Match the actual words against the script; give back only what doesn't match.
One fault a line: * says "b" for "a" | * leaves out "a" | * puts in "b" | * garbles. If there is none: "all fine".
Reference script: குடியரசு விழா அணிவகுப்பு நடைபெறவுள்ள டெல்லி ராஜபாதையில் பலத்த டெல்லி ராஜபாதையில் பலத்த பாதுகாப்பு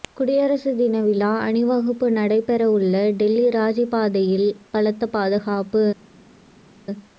* puts in "தின"
* leaves out "டெல்லி ராஜபாதையில் பலத்த"